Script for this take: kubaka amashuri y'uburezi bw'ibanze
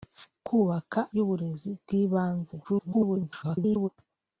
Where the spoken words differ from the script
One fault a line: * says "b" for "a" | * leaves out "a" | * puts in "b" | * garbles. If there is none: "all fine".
* leaves out "amashuri"
* garbles